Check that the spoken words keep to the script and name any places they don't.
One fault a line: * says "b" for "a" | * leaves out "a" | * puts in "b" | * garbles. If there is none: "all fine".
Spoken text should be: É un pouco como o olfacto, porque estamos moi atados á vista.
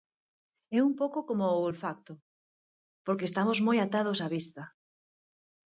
all fine